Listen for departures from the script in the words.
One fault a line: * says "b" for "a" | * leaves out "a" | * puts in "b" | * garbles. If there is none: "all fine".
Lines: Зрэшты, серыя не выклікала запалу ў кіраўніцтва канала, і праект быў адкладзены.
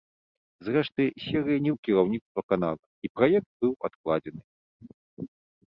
* leaves out "выклікала запалу"